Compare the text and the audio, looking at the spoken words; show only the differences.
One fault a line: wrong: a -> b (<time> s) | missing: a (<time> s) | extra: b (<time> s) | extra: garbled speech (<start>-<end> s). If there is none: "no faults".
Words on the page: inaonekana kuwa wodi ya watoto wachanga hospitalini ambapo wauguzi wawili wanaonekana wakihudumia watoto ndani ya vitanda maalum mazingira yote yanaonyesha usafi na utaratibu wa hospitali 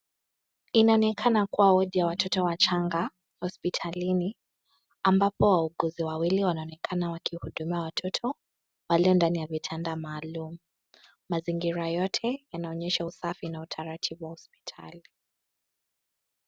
extra: walio (8.9 s)